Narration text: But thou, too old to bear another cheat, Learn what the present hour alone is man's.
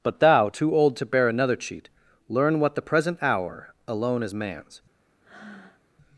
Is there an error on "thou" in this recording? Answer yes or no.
no